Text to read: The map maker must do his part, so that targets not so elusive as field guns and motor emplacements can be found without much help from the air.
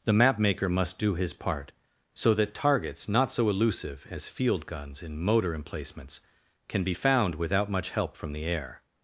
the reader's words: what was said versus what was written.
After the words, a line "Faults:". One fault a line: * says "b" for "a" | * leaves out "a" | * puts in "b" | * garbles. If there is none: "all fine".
The map maker must do his part, so that targets not so elusive as field guns in motor emplacements can be found without much help from the air.
Faults:
* says "in" for "and"